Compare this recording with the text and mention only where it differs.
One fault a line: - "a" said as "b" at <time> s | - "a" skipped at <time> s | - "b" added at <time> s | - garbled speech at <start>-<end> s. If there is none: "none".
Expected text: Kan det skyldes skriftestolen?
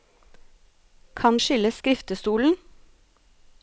- "det" skipped at 1.4 s